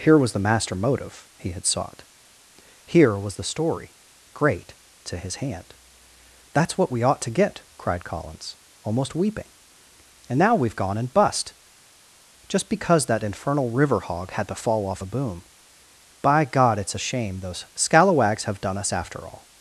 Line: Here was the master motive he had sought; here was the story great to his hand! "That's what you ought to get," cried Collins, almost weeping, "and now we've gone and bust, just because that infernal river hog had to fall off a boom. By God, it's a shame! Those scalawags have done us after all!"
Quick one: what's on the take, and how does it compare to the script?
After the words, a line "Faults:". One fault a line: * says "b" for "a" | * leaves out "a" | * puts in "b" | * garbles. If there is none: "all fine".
Here was the master motive he had sought; here was the story great to his hand! "That's what we ought to get," cried Collins, almost weeping, "and now we've gone and bust, just because that infernal river hog had to fall off a boom. By God, it's a shame! Those scalawags have done us after all!"
Faults:
* says "we" for "you"